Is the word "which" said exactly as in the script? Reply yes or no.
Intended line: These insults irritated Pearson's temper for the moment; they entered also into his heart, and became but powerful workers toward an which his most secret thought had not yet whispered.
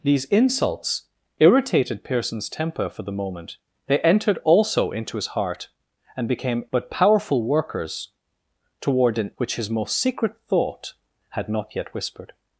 yes